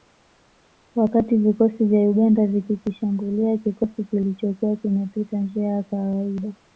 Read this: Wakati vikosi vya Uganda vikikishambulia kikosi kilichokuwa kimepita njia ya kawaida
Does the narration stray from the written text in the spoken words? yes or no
no